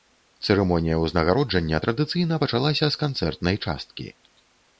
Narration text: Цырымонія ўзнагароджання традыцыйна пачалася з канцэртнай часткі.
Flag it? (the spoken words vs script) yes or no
no